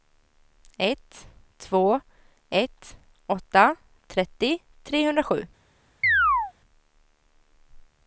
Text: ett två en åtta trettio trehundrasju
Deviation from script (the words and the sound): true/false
true